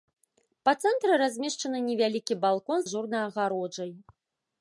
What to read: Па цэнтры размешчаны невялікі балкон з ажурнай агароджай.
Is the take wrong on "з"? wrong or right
wrong